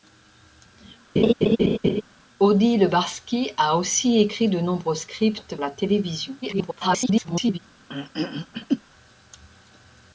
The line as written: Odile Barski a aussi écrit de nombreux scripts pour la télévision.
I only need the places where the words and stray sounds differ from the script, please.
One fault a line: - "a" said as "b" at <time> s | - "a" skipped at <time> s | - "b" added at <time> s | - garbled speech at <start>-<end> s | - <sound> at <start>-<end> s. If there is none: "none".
- laugh at 1.2-2.0 s
- "pour" skipped at 5.6 s
- garbled speech at 6.4-7.6 s
- throat clearing at 7.9-8.8 s